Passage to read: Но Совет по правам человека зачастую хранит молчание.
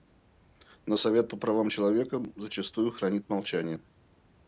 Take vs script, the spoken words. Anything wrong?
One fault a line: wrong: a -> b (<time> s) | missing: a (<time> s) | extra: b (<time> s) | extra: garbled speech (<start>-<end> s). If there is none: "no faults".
no faults